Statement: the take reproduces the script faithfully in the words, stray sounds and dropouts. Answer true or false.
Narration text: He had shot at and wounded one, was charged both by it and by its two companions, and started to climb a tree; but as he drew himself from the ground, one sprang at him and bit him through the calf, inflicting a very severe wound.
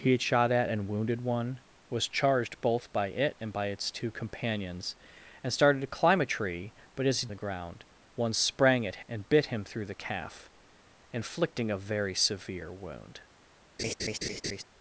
false